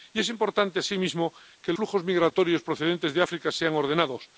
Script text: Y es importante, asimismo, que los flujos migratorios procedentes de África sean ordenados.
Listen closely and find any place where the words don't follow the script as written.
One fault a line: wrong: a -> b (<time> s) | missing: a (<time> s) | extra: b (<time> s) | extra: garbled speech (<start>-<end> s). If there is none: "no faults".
missing: los (1.7 s)